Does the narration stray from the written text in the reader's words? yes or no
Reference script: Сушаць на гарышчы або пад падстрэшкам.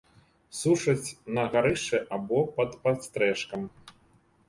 no